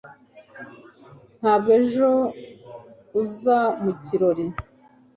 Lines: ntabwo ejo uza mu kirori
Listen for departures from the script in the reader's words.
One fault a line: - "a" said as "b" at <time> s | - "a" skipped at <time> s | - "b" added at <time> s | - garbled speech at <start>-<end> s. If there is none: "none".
none